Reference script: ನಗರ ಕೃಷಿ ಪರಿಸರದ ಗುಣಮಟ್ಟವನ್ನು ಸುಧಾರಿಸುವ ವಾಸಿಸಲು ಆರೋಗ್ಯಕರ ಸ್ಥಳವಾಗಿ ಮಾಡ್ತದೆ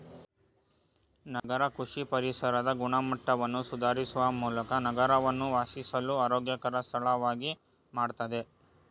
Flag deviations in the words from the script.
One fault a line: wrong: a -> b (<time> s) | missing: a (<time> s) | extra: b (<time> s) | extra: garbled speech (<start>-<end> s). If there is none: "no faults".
extra: ಮೂಲಕ ನಗರವನ್ನು (4.4 s)